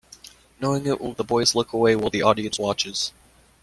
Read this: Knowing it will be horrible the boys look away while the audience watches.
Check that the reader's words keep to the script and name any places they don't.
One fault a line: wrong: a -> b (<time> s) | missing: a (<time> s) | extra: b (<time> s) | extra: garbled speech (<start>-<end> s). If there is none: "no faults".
missing: be horrible (1.1 s)